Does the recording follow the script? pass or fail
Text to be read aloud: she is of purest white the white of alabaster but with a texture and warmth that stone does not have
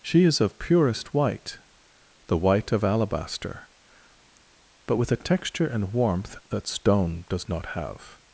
pass